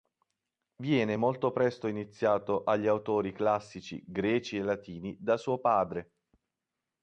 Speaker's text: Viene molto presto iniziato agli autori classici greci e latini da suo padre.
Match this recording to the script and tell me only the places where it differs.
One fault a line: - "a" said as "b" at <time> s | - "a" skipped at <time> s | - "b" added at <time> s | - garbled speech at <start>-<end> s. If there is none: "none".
none